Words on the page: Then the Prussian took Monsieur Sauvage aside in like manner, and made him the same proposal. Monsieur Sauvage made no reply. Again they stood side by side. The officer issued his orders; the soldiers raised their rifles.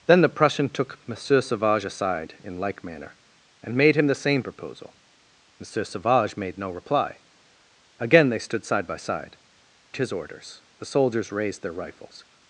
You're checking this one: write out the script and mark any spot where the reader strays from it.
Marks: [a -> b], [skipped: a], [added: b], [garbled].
Then the Prussian took Monsieur Sauvage aside in like manner, and made him the same proposal. Monsieur Sauvage made no reply. Again they stood side by side. [skipped: The officer issued] his orders; the soldiers raised their rifles.